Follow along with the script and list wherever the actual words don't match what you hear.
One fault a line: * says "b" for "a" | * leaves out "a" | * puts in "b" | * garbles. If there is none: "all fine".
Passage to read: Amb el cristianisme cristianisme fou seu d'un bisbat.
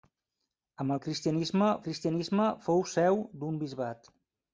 all fine